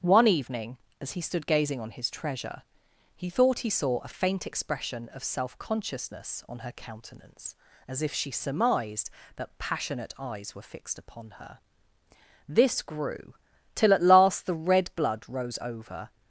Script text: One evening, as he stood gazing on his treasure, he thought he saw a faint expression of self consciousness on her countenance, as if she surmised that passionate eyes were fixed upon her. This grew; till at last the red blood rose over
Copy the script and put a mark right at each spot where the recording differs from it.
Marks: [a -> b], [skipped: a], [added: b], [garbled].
One evening, as he stood gazing on his treasure, he thought he saw a faint expression of self consciousness on her countenance, as if she surmised that passionate eyes were fixed upon her. This grew; till at last the red blood rose over